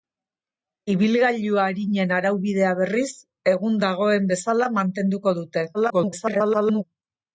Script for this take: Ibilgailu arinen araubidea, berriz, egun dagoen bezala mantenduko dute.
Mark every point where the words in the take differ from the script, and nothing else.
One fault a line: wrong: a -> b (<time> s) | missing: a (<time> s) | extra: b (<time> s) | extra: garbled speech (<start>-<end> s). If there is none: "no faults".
extra: garbled speech (5.7-6.8 s)